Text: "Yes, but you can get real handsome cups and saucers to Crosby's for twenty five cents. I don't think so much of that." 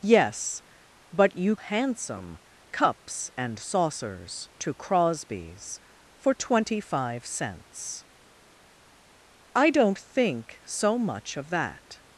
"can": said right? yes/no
no